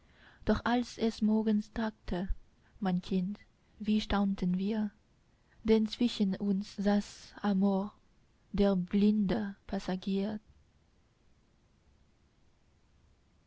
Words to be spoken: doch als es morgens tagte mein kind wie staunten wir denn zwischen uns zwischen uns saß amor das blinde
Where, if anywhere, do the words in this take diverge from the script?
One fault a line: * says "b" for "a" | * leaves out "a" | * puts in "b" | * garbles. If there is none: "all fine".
* leaves out "zwischen uns"
* says "der" for "das"